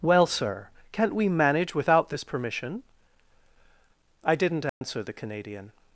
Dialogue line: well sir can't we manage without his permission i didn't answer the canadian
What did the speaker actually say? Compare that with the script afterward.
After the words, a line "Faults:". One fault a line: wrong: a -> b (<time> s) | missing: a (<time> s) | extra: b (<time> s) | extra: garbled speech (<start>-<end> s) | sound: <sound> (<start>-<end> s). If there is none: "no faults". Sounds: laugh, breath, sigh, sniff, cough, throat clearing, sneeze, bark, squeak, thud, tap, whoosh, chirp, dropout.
well sir can't we manage without this permission i didn't answer the canadian
Faults:
wrong: his -> this (2.1 s)
sound: dropout (4.7-4.8 s)